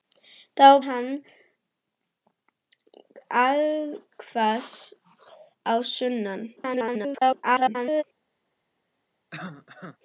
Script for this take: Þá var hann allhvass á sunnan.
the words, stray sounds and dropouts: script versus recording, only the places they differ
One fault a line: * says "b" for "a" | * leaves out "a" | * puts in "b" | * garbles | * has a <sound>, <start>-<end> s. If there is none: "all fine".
* leaves out "var"
* garbles
* has a cough, 9.3-10.0 s